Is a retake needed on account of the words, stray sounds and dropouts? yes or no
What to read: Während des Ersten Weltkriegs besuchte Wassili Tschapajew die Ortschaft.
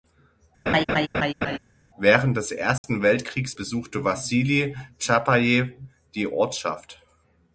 yes